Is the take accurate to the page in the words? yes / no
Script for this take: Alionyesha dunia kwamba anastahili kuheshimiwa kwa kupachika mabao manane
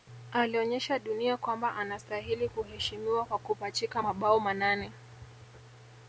yes